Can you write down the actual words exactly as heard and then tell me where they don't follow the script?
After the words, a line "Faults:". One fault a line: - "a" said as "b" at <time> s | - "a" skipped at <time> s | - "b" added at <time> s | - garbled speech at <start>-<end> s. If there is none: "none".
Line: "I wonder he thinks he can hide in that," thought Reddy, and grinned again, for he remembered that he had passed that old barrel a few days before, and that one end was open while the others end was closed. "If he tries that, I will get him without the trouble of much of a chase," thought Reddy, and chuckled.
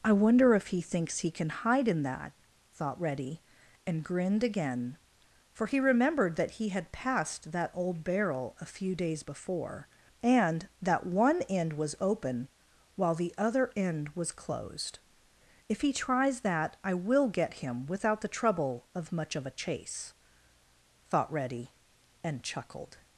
"I wonder if he thinks he can hide in that," thought Reddy, and grinned again, for he remembered that he had passed that old barrel a few days before, and that one end was open while the other end was closed. "If he tries that, I will get him without the trouble of much of a chase," thought Reddy, and chuckled.
Faults:
- "if" added at 0.6 s
- "others" said as "other" at 13.4 s